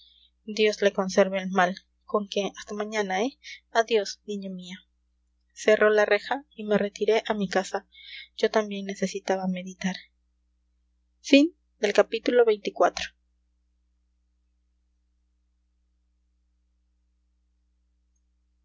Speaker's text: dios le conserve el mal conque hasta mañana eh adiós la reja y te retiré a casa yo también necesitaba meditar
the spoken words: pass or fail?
fail